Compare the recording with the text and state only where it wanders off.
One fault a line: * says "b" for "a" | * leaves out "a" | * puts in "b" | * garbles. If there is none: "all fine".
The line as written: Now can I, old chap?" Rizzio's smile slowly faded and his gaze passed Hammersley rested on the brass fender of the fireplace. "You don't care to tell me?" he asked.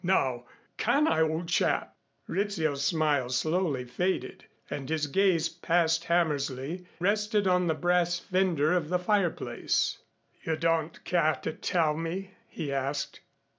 all fine